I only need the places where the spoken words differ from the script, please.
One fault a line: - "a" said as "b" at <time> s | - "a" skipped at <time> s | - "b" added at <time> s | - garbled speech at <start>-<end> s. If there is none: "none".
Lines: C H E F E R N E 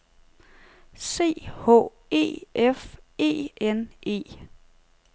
- "R" skipped at 3.5 s